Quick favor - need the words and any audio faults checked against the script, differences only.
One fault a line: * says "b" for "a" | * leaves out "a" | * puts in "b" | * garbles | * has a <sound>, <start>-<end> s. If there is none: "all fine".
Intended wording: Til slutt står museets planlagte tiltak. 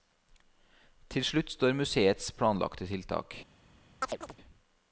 * has a chirp, 4.0-4.4 s